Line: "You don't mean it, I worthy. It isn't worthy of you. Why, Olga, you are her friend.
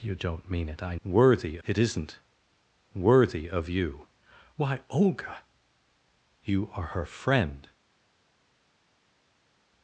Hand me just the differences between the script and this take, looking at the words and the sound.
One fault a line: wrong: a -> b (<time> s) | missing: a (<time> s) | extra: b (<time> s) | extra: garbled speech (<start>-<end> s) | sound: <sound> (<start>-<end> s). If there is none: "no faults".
no faults